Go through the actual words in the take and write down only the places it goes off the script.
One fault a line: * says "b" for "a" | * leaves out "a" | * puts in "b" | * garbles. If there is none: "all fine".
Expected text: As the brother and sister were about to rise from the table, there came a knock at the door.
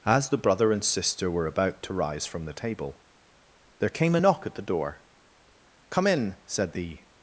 * puts in "Come in said the"